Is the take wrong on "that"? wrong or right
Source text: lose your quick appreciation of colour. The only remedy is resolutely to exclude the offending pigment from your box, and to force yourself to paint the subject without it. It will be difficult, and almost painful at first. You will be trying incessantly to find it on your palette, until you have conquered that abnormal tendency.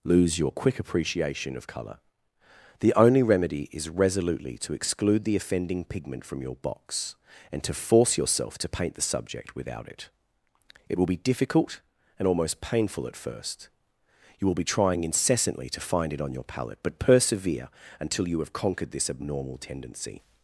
wrong